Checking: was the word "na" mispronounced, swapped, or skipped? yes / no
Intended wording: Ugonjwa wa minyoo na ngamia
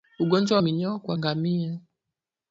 yes